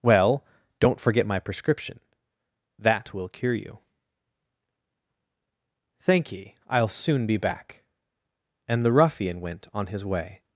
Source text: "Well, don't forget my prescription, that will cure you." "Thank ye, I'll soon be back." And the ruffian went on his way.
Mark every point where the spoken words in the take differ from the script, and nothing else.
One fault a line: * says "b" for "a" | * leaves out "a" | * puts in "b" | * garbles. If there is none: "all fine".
all fine